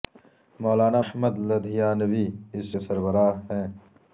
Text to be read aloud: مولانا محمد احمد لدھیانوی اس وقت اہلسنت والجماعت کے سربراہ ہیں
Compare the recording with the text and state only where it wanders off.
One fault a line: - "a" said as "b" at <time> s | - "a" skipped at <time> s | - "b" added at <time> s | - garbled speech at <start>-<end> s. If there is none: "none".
- "محمد" skipped at 1.0 s
- "وقت اہلسنت والجماعت" skipped at 2.8 s